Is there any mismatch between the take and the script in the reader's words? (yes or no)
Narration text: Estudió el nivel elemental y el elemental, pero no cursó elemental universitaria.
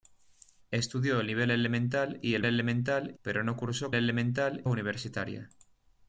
no